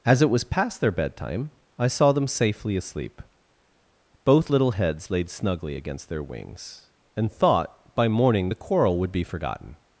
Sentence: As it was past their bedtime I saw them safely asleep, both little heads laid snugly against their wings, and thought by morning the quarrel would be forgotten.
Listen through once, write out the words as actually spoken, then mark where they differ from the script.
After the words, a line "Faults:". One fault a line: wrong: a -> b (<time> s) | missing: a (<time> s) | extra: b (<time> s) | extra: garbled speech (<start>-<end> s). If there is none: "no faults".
As it was past their bedtime I saw them safely asleep, both little heads laid snugly against their wings, and thought by morning the quarrel would be forgotten.
Faults:
no faults